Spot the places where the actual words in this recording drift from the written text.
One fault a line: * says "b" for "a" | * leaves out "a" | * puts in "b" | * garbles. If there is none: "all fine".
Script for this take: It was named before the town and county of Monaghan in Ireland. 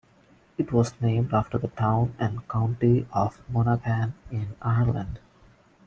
* says "after" for "before"